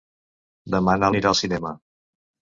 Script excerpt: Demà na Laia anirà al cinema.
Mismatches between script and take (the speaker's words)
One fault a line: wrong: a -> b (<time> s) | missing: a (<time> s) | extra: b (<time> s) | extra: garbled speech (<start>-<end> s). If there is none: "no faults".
missing: Laia (1.1 s)